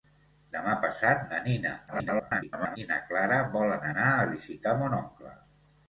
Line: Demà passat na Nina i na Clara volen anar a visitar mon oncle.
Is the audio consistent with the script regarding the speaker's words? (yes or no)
no